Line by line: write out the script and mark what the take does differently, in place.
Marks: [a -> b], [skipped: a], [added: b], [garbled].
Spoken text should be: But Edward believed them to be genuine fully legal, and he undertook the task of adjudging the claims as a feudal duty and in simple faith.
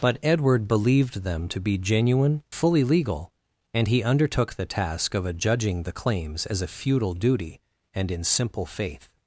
But Edward believed them to be genuine fully legal, and he undertook the task of adjudging the claims as a feudal duty and in simple faith.